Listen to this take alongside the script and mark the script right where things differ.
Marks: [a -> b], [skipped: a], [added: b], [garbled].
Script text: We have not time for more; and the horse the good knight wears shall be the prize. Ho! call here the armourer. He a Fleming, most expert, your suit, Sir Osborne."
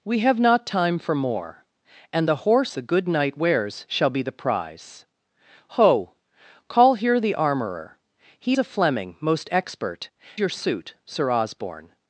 We have not time for more; and the horse the good knight wears shall be the prize. Ho! call here the armourer. He a Fleming, most expert, your suit, Sir Osborne."